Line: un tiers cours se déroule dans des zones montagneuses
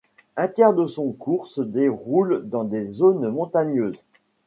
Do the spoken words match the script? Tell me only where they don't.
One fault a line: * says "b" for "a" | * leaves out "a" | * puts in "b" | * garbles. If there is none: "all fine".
* puts in "de son"